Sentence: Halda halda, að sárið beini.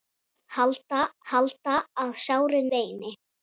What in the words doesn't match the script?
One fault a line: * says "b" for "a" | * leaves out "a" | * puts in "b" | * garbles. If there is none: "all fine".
all fine